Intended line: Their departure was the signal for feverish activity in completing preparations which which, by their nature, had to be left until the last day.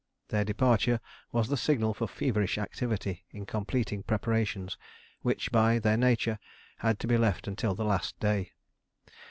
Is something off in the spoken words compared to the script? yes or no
yes